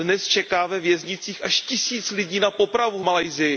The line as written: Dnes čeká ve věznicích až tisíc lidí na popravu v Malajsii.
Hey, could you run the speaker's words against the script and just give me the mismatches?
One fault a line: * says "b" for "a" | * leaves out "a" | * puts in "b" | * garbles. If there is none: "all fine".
all fine